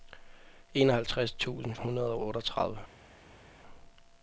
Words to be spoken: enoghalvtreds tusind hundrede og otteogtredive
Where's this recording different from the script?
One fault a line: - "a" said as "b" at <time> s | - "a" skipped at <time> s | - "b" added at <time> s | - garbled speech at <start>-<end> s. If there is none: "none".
none